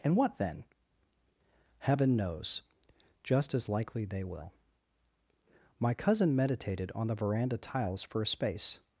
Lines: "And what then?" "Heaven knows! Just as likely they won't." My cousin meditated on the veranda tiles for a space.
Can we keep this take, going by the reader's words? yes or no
no